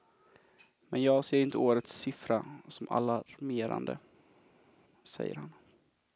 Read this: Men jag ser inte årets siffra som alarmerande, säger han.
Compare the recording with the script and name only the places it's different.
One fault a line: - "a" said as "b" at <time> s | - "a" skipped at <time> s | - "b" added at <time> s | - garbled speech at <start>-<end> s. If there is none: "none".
none